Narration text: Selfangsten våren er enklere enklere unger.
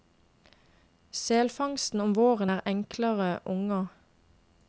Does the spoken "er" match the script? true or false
true